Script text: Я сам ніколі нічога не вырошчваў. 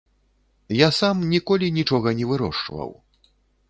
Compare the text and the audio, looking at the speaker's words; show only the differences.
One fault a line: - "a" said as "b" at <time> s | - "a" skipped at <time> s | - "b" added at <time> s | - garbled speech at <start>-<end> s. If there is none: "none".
none